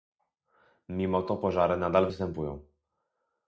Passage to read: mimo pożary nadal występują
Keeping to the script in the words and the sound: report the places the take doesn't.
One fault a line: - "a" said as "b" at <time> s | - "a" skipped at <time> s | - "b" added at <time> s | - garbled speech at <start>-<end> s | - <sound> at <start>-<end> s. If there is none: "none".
- "to" added at 1.2 s